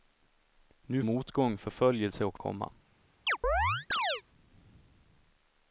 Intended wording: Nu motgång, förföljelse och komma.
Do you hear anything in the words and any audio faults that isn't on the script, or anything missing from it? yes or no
yes